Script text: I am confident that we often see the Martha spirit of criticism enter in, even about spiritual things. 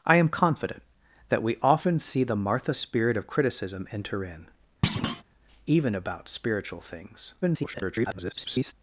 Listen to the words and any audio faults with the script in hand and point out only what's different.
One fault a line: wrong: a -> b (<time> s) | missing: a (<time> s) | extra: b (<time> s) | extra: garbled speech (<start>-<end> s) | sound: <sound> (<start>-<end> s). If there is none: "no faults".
sound: thud (4.8-5.2 s)
extra: garbled speech (7.4-8.7 s)